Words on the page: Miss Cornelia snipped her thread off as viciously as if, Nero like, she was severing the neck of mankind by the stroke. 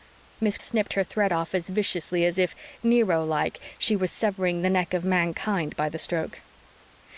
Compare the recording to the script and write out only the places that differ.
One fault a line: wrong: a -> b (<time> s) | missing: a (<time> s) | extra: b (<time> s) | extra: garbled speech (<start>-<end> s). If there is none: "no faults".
missing: Cornelia (0.6 s)